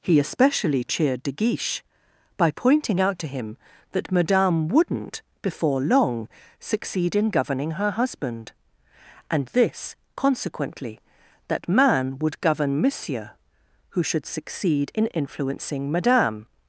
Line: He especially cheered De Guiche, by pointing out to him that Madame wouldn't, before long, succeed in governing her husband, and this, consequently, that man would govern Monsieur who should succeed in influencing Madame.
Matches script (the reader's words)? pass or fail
pass